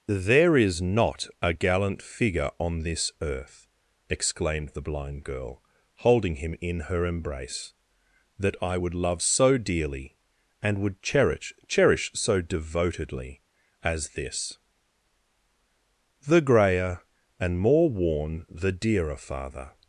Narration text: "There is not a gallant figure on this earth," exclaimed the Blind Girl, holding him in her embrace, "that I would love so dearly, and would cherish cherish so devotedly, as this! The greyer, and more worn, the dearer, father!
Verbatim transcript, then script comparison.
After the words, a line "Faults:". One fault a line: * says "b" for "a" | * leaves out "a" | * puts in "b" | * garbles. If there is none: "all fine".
"There is not a gallant figure on this earth," exclaimed the Blind Girl, holding him in her embrace, "that I would love so dearly, and would cherish cherish so devotedly, as this! The greyer, and more worn, the dearer, father!
Faults:
all fine